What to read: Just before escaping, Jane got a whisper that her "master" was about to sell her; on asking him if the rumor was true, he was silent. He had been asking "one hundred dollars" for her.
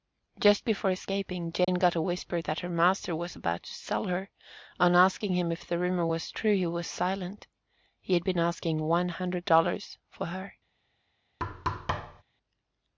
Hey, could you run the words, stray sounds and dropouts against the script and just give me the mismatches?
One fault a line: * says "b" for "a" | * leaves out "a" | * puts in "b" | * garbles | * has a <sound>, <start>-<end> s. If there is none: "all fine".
* has a dropout, 1.6-1.7 s
* has a thud, 11.4-12.2 s